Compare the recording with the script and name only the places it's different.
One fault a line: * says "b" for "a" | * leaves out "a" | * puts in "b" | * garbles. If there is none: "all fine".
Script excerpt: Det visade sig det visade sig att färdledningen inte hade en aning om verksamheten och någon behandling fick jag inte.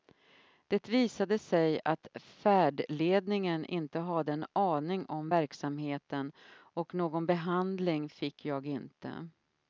* leaves out "det visade sig"